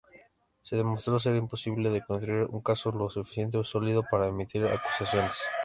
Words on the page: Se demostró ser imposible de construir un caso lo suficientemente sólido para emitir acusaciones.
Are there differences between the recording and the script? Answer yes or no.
no